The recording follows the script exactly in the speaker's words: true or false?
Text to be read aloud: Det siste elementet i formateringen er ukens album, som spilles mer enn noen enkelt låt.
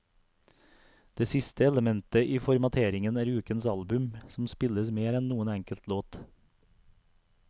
true